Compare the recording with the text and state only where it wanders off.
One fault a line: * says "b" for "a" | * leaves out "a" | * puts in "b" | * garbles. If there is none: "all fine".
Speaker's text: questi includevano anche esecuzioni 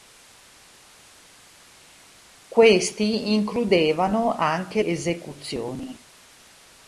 all fine